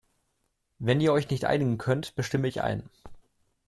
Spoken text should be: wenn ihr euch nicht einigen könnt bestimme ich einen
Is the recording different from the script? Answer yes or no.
no